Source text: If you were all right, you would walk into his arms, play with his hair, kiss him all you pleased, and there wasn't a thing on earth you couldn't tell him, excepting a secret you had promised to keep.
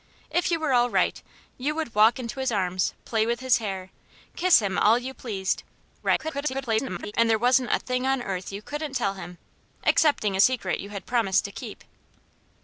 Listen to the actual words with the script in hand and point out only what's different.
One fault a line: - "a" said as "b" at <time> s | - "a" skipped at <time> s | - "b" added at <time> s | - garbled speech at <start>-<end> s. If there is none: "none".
- garbled speech at 6.0-7.1 s